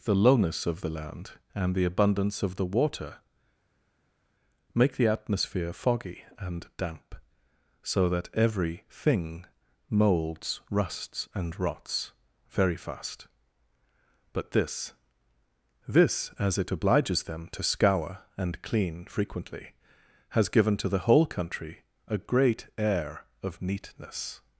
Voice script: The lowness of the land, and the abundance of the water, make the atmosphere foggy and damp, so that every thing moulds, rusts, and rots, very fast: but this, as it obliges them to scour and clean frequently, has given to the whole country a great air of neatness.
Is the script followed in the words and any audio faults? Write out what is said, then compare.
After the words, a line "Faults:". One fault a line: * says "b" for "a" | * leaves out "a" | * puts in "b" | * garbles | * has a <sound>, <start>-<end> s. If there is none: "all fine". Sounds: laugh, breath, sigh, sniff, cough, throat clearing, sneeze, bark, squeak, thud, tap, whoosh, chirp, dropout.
The lowness of the land, and the abundance of the water, make the atmosphere foggy and damp, so that every thing moulds, rusts, and rots, very fast: but this this, as it obliges them to scour and clean frequently, has given to the whole country a great air of neatness.
Faults:
* puts in "this"